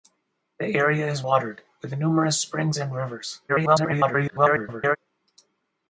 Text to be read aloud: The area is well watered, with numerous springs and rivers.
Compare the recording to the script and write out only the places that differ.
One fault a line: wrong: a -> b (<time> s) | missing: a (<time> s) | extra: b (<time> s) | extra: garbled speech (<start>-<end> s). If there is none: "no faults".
missing: well (1.2 s)
extra: garbled speech (3.5-5.0 s)